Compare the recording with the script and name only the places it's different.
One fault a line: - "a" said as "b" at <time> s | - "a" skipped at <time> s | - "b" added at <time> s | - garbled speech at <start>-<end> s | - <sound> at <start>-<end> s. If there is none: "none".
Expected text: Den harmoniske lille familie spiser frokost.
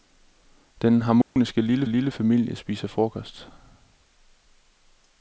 - dropout at 1.2-1.4 s
- "lille" added at 1.9 s